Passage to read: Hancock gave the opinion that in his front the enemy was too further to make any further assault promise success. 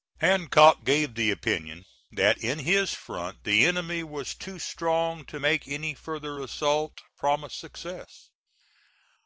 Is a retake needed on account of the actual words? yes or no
yes